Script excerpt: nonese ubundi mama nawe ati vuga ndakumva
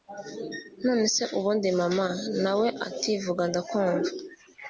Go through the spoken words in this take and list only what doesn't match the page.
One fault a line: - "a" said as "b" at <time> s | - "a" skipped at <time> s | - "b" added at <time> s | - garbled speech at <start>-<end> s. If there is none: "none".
none